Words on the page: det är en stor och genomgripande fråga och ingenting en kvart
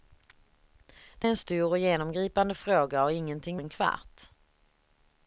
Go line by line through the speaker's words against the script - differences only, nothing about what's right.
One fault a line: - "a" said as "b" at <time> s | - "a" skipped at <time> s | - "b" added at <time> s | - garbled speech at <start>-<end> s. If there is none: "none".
none